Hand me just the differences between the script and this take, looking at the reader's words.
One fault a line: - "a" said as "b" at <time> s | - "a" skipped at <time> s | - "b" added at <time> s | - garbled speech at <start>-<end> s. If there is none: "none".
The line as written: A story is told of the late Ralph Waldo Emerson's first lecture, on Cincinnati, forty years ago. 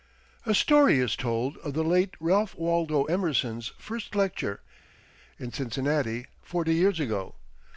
- "on" said as "in" at 5.4 s